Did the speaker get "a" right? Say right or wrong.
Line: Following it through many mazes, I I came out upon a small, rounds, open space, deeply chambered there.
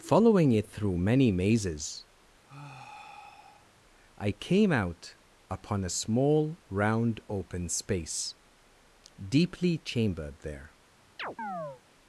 right